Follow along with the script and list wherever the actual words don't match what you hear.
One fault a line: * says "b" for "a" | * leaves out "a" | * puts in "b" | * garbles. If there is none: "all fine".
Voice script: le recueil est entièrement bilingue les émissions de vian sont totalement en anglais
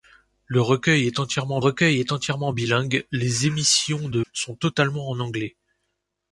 * puts in "recueil est entièrement"
* leaves out "vian"